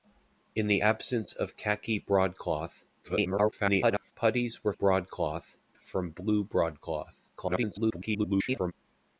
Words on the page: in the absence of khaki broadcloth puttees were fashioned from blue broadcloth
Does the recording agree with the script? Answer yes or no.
no